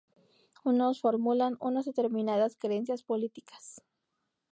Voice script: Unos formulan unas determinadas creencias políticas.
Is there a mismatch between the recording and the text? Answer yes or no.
no